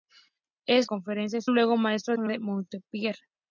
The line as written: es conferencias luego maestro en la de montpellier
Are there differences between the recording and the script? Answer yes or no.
no